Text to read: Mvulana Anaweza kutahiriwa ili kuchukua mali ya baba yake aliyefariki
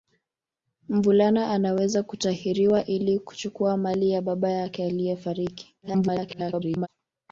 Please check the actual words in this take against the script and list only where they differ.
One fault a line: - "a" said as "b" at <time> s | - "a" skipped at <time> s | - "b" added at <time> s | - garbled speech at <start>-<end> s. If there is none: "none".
- garbled speech at 5.8-6.9 s